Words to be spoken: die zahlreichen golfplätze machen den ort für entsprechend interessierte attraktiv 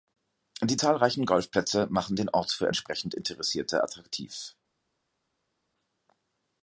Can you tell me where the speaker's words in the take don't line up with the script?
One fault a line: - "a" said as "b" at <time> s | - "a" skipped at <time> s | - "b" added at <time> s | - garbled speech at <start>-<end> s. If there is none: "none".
none